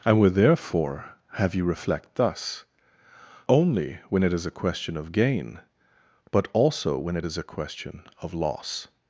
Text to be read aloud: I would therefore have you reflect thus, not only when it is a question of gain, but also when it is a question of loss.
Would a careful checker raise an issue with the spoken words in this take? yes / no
yes